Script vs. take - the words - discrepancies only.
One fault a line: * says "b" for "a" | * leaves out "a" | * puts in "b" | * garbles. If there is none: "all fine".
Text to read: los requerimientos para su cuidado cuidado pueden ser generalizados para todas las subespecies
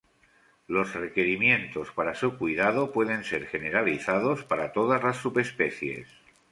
* leaves out "cuidado"